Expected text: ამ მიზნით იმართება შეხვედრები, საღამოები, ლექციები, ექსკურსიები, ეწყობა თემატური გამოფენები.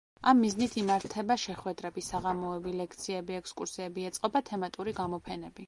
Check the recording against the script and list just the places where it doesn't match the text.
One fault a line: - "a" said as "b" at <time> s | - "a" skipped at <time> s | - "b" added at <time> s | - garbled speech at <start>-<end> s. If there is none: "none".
none